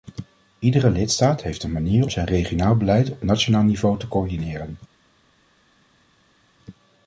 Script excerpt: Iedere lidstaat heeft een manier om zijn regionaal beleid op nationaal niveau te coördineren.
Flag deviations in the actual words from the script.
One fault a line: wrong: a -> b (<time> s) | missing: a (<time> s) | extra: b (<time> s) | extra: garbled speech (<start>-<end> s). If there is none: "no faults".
missing: om (2.1 s)